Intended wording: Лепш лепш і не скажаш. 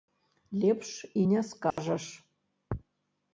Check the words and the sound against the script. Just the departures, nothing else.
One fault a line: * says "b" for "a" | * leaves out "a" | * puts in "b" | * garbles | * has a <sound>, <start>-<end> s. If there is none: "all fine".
* leaves out "лепш"
* has a dropout, 1.7-1.8 s